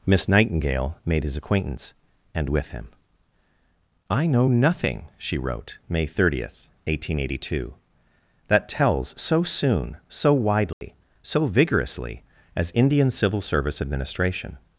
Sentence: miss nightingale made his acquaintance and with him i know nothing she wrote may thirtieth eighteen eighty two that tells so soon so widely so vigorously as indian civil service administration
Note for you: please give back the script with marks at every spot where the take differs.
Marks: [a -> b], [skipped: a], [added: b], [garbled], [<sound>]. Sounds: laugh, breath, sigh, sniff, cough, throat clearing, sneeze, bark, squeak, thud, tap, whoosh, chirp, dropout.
miss nightingale made his acquaintance and with him i know nothing she wrote may thirtieth eighteen eighty two that tells so soon so widely [dropout] so vigorously as indian civil service administration